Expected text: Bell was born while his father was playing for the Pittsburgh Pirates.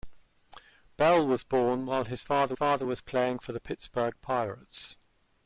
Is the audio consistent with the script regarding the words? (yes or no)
no